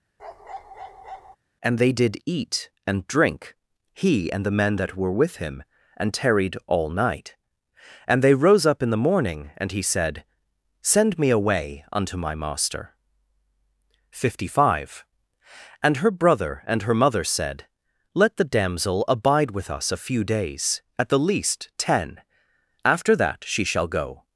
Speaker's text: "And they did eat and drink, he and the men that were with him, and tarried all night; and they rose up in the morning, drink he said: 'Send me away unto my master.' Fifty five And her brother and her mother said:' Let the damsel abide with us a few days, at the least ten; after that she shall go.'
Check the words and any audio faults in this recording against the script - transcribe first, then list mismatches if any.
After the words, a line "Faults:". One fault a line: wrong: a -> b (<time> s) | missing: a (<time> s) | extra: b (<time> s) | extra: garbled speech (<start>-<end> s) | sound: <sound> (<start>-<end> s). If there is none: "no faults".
"And they did eat and drink, he and the men that were with him, and tarried all night; and they rose up in the morning, and he said: 'Send me away unto my master.' Fifty five And her brother and her mother said:' Let the damsel abide with us a few days, at the least ten; after that she shall go.'
Faults:
sound: bark (0.2-1.4 s)
wrong: drink -> and (9.6 s)